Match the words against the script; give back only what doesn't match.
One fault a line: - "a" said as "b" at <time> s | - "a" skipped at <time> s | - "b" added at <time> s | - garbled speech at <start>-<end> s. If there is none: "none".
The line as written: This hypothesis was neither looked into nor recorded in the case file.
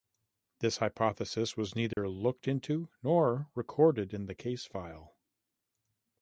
none